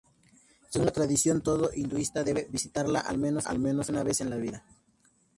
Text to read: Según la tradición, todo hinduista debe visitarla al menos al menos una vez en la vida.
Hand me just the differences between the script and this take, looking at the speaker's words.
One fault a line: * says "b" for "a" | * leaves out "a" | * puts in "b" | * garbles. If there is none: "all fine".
all fine